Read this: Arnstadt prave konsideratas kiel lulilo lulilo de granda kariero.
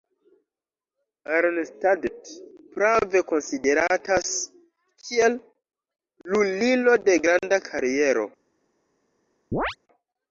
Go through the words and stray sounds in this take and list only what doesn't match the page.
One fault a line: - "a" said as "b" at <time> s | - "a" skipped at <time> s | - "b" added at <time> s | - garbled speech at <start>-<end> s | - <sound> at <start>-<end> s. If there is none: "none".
- "lulilo" skipped at 7.0 s
- chirp at 9.5-9.8 s